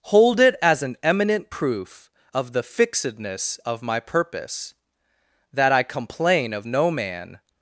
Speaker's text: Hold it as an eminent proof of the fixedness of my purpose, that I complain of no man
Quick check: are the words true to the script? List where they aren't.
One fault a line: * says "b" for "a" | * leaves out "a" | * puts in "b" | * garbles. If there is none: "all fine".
all fine